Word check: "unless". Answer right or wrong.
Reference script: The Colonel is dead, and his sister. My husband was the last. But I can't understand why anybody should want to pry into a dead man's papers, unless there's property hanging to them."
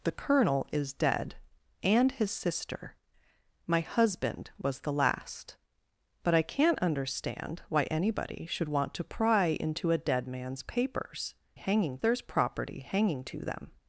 wrong